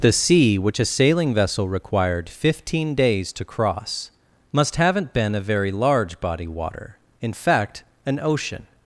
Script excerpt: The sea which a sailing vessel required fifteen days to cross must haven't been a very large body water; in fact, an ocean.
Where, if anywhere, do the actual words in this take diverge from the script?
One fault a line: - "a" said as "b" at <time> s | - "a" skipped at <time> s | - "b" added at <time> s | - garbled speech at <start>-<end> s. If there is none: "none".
none